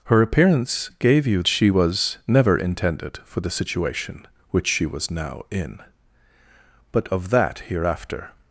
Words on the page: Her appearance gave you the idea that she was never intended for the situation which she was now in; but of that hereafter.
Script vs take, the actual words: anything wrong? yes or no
yes